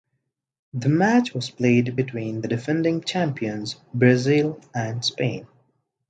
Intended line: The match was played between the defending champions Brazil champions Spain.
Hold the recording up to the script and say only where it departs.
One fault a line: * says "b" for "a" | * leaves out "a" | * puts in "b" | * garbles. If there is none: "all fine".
* says "and" for "champions"